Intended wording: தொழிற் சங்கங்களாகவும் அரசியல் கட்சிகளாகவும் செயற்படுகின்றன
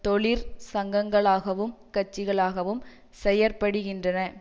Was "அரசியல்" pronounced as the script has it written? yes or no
no